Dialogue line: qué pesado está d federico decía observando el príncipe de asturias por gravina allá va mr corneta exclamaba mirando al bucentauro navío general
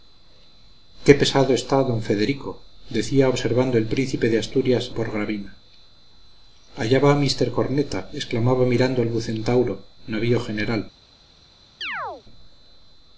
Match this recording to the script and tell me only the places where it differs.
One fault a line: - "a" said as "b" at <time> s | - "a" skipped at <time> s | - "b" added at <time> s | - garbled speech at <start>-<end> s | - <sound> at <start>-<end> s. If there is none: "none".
- chirp at 11.8-12.2 s